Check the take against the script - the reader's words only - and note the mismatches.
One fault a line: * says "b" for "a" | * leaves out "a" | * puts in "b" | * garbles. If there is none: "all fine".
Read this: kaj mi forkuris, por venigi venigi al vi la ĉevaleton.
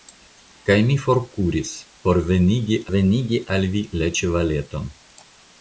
all fine